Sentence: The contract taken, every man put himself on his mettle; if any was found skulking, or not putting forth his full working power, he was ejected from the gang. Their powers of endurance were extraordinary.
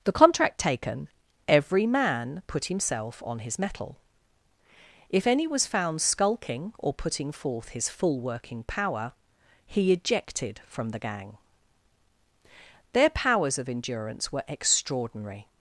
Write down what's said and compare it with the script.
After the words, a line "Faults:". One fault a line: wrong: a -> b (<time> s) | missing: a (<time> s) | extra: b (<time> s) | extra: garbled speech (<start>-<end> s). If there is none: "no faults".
The contract taken, every man put himself on his mettle; if any was found skulking, or putting forth his full working power, he ejected from the gang. Their powers of endurance were extraordinary.
Faults:
missing: not (6.9 s)
missing: was (9.9 s)